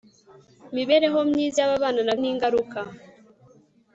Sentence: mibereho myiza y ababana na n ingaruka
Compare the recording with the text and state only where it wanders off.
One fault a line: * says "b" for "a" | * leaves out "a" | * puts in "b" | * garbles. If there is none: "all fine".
all fine